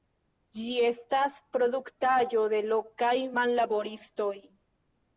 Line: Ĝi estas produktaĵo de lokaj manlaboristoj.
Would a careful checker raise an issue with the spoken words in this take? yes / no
no